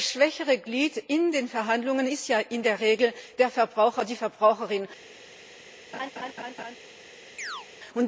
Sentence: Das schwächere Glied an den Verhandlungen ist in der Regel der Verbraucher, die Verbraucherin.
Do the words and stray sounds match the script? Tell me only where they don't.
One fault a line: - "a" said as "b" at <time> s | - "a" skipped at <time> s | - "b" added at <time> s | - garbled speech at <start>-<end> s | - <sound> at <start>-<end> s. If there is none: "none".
- "an" said as "in" at 1.0 s
- "ja" added at 2.3 s
- laugh at 5.9-6.8 s
- chirp at 7.4-7.7 s